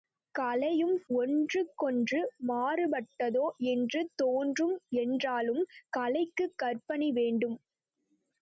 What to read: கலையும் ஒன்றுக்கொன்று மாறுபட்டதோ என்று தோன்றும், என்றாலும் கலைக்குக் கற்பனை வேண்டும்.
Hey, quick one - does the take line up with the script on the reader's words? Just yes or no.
yes